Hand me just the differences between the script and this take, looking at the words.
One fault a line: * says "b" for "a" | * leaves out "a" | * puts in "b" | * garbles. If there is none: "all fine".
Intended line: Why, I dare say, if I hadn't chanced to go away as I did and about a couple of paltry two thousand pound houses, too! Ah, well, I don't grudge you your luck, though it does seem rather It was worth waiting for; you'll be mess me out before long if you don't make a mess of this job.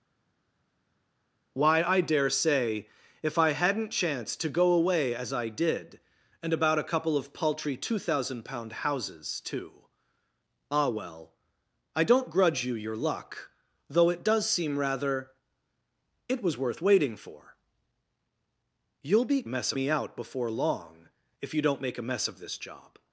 all fine